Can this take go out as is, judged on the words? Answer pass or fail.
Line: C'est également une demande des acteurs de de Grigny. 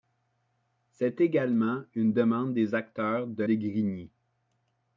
pass